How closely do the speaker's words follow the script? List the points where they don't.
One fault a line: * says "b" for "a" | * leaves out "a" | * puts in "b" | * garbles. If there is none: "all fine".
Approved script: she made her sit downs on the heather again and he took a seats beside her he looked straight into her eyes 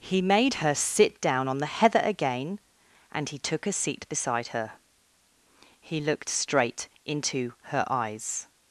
* says "he" for "she"
* says "down" for "downs"
* says "seat" for "seats"